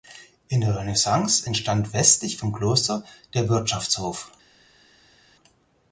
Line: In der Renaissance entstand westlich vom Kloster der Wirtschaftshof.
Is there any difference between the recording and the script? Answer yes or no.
no